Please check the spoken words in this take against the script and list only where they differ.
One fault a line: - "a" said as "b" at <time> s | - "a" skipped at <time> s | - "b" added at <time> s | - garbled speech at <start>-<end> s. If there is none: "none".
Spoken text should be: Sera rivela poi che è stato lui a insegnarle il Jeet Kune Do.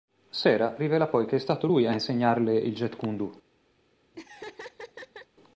none